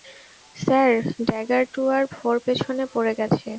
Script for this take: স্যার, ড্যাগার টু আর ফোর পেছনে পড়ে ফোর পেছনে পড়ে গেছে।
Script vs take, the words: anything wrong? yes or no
yes